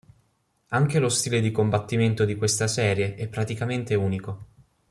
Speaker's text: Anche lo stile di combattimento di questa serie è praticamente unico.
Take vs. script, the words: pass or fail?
pass